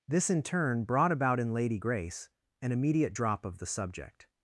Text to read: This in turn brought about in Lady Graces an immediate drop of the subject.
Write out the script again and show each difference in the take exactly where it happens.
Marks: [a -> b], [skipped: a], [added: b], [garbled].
This in turn brought about in Lady [Graces -> Grace] an immediate drop of the subject.